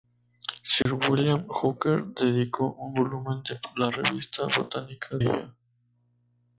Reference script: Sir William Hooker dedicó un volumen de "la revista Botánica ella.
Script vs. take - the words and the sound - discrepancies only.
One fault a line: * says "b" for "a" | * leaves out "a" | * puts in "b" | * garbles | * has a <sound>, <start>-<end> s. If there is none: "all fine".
* has a dropout, 0.8-0.9 s